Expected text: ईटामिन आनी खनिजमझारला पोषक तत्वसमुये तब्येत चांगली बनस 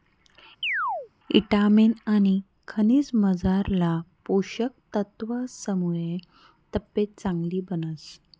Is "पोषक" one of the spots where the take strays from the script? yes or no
no